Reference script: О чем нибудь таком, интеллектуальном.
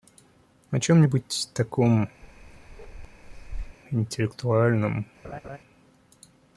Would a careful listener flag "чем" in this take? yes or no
no